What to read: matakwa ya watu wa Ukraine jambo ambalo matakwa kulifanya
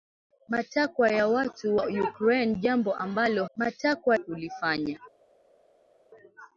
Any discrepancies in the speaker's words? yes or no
no